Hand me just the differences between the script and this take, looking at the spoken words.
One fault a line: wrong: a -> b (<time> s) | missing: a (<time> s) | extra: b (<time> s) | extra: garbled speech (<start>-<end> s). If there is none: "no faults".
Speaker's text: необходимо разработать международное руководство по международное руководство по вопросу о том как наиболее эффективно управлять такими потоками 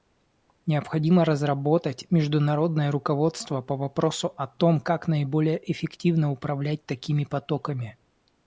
missing: международное руководство по (3.8 s)